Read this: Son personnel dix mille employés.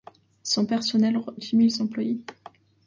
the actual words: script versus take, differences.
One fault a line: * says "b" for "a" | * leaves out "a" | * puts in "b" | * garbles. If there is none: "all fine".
all fine